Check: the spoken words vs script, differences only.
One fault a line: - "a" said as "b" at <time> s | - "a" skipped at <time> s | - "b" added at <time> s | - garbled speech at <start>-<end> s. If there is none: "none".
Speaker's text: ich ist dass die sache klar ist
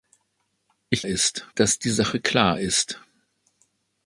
none